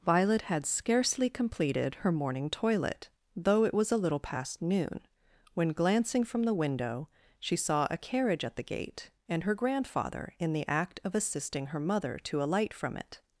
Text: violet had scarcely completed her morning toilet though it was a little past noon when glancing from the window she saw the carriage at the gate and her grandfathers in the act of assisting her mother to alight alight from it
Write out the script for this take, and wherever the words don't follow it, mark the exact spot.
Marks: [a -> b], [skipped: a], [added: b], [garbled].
violet had scarcely completed her morning toilet though it was a little past noon when glancing from the window she saw [the -> a] carriage at the gate and her [grandfathers -> grandfather] in the act of assisting her mother to alight [skipped: alight] from it